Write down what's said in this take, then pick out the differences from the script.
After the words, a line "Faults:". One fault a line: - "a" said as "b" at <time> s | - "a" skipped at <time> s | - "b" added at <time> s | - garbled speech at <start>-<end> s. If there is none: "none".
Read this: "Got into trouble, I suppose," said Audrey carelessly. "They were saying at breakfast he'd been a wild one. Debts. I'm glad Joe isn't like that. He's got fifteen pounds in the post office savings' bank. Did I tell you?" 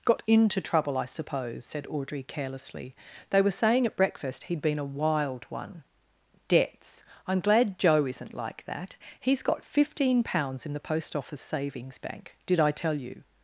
"Got into trouble, I suppose," said Audrey carelessly. "They were saying at breakfast he'd been a wild one. Debts. I'm glad Joe isn't like that. He's got fifteen pounds in the post office savings' bank. Did I tell you?"
Faults:
none